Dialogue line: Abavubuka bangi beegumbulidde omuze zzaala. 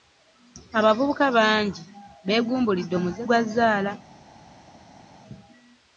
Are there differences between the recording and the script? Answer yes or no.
yes